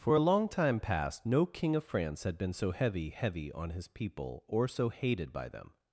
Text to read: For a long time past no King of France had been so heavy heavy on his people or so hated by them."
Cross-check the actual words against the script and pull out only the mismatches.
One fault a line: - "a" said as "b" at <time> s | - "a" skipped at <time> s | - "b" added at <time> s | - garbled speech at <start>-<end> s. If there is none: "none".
none